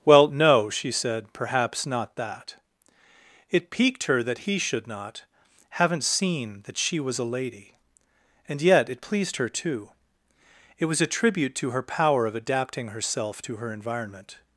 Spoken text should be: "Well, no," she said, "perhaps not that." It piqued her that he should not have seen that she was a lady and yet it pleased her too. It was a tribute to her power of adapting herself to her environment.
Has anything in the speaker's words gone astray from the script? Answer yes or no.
yes